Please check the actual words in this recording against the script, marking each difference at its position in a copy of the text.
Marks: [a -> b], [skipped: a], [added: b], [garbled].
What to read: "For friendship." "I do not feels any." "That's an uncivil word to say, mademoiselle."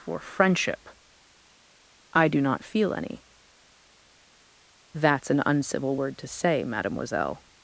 "For friendship." "I do not [feels -> feel] any." "That's an uncivil word to say, mademoiselle."